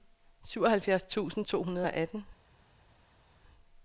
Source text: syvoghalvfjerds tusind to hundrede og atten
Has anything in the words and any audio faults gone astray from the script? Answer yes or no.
no